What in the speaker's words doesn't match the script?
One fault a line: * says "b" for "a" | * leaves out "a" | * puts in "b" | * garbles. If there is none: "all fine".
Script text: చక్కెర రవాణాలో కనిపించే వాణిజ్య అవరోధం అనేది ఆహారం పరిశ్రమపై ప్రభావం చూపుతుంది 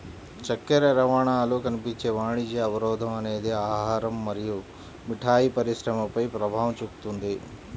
* puts in "మరియు మిఠాయి"